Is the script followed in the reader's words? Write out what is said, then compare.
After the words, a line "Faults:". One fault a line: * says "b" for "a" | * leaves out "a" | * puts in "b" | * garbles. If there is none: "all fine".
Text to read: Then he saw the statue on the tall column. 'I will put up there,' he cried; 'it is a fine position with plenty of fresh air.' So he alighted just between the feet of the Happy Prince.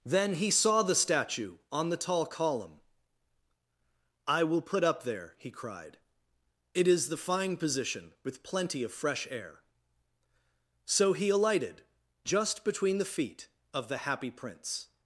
Then he saw the statue on the tall column. 'I will put up there,' he cried; 'it is the fine position with plenty of fresh air.' So he alighted just between the feet of the Happy Prince.
Faults:
* says "the" for "a"